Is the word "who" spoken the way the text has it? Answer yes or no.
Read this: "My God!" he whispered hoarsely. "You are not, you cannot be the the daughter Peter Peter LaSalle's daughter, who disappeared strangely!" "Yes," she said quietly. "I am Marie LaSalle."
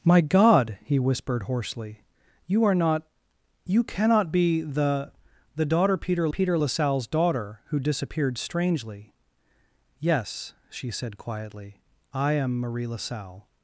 yes